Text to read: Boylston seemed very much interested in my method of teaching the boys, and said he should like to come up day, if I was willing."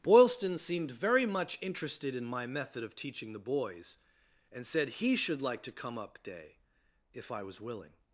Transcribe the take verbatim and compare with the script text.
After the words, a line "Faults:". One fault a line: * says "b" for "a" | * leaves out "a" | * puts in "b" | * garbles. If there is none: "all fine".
Boylston seemed very much interested in my method of teaching the boys, and said he should like to come up day, if I was willing."
Faults:
all fine